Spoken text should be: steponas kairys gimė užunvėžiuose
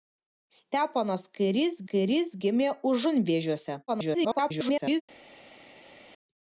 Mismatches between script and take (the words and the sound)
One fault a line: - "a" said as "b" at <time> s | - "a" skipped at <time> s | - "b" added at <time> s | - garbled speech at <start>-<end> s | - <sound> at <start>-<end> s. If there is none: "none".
- "kairys" added at 1.9 s
- garbled speech at 3.9-5.0 s